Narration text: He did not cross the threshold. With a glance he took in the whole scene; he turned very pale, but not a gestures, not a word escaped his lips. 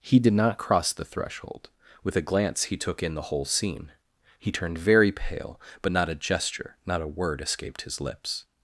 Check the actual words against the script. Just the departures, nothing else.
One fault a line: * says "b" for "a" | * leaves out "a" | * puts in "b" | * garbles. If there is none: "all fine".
* says "gesture" for "gestures"